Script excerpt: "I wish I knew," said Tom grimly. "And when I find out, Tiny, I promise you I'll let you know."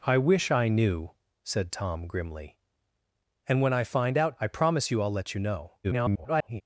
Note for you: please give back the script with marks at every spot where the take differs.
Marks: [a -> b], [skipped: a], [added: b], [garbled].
"I wish I knew," said Tom grimly. "And when I find out, [skipped: Tiny,] I promise you I'll let you know." [garbled]